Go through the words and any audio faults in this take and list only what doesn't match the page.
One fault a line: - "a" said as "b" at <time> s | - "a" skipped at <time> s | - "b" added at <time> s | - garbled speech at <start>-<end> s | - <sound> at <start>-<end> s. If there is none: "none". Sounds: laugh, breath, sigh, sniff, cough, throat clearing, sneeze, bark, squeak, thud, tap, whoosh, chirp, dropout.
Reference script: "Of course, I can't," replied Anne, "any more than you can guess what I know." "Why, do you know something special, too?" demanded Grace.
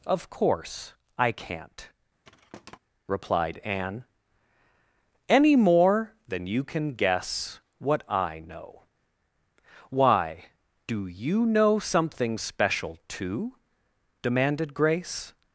- thud at 2.2-2.8 s